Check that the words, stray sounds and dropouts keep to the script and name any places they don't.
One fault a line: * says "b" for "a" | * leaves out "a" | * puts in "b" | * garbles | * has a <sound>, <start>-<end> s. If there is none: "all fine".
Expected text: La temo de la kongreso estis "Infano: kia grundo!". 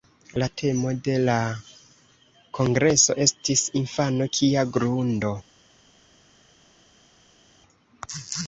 all fine